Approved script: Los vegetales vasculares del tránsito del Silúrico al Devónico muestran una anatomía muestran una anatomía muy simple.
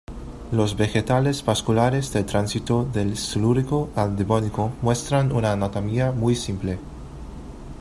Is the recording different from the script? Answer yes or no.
yes